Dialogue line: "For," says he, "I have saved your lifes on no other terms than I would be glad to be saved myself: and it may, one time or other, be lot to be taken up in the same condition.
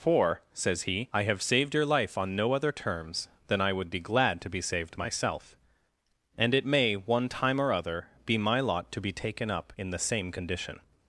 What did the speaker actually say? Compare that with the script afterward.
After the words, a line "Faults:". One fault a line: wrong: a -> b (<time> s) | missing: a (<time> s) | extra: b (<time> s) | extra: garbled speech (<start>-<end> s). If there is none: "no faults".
"For," says he, "I have saved your life on no other terms than I would be glad to be saved myself: and it may, one time or other, be my lot to be taken up in the same condition.
Faults:
wrong: lifes -> life (1.9 s)
extra: my (8.4 s)